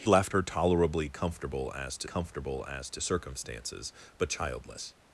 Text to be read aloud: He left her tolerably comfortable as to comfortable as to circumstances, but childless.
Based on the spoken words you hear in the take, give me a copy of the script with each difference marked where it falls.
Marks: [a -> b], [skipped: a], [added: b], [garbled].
He left her tolerably comfortable as to comfortable as to circumstances, but childless.